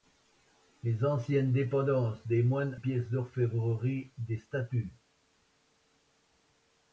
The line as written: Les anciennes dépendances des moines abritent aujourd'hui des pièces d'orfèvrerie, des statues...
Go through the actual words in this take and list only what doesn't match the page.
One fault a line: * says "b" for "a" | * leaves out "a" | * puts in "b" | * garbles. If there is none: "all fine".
* leaves out "abritent aujourd'hui des"